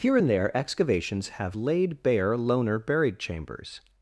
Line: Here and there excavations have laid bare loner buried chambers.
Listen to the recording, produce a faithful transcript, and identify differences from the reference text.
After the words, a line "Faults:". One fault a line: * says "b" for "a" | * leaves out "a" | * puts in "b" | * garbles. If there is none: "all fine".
Here and there excavations have laid bare loner buried chambers.
Faults:
all fine